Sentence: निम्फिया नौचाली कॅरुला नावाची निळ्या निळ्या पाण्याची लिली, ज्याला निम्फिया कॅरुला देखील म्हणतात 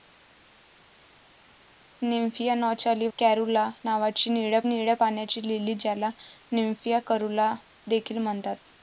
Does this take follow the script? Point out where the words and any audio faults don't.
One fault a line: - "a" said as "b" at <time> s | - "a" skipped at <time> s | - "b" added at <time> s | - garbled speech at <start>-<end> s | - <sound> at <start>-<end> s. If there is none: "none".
none